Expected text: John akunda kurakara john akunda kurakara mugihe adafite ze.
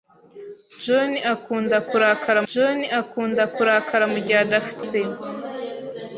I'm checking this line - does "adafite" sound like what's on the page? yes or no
yes